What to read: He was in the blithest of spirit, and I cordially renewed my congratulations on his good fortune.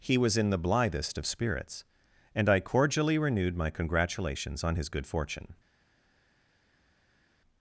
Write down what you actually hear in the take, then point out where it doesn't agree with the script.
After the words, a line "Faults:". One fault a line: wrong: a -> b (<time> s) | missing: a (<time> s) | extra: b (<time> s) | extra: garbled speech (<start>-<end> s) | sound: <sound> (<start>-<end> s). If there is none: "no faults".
He was in the blithest of spirits, and I cordially renewed my congratulations on his good fortune.
Faults:
wrong: spirit -> spirits (1.3 s)